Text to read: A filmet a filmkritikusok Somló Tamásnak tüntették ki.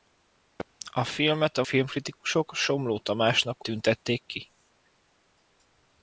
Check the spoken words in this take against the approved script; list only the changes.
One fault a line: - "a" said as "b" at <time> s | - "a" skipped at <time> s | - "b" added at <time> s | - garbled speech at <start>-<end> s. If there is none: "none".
none